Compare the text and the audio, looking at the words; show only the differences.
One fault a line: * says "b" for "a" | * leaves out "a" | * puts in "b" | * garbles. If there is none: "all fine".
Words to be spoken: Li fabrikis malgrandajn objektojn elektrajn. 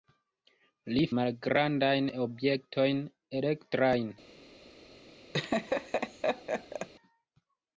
* leaves out "fabrikis"